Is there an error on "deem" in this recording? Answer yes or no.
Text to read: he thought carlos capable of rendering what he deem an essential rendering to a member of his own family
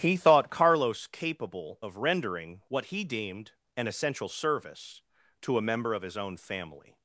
yes